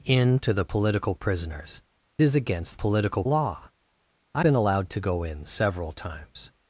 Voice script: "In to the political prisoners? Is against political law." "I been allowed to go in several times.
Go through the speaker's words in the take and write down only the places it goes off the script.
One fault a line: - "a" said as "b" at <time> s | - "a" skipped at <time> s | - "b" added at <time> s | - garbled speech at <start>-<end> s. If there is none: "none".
none